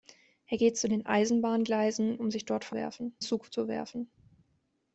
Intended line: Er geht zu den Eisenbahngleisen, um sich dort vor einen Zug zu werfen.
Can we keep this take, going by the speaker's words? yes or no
no